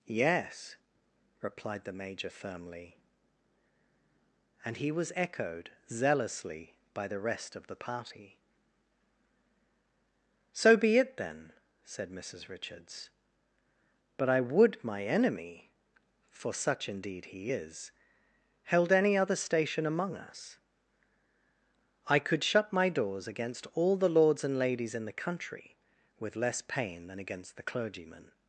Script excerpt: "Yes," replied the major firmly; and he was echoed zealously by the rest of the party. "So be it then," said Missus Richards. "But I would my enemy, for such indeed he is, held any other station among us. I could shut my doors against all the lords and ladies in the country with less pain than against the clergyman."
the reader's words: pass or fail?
pass